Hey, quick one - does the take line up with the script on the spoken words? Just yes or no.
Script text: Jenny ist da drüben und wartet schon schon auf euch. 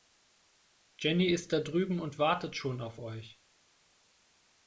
no